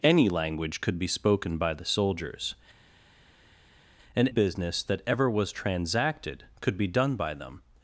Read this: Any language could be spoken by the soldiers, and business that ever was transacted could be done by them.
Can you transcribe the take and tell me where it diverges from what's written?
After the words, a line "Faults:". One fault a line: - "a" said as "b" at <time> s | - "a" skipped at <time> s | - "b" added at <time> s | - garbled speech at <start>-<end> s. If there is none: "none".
Any language could be spoken by the soldiers, and business that ever was transacted could be done by them.
Faults:
none